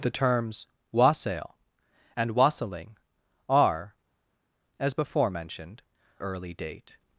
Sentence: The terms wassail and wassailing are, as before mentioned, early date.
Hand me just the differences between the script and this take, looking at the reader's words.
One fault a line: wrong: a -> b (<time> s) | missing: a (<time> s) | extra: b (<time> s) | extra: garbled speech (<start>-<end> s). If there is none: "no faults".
no faults